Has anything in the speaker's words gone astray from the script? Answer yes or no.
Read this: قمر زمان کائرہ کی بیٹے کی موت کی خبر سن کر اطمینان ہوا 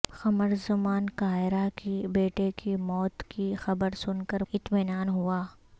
no